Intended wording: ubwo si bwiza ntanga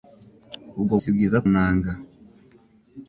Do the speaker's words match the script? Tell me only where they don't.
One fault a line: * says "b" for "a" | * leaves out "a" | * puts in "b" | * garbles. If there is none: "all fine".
all fine